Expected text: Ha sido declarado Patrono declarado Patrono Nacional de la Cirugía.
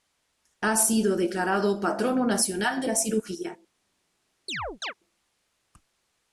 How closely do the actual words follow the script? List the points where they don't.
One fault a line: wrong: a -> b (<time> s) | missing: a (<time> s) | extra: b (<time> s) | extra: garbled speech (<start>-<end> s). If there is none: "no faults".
missing: declarado Patrono (2.2 s)